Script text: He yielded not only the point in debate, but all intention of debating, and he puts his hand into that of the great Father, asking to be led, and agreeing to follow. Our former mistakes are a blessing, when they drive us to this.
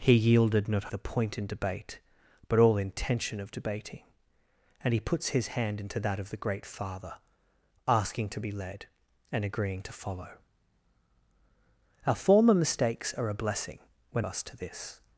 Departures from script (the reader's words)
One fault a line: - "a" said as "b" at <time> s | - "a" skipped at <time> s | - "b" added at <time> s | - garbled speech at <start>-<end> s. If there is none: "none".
- "only" skipped at 0.9 s
- "they drive" skipped at 14.2 s